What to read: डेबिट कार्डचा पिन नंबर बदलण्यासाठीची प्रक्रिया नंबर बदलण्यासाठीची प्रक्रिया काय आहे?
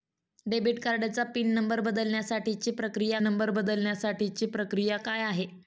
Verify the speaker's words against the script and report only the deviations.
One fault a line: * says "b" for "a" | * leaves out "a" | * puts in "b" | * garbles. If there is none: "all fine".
all fine